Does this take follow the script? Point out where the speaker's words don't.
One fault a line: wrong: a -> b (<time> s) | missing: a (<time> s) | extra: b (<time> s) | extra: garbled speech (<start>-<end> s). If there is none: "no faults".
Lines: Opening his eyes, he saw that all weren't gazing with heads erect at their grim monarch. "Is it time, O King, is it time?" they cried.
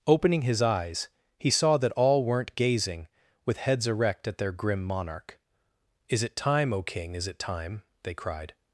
no faults